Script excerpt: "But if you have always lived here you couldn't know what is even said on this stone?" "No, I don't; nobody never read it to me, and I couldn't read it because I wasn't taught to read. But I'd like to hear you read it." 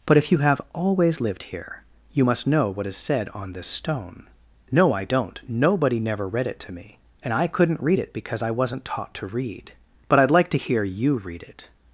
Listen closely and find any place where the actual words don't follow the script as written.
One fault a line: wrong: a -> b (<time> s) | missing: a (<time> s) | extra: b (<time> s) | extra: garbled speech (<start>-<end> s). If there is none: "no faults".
wrong: couldn't -> must (2.2 s)
missing: even (2.9 s)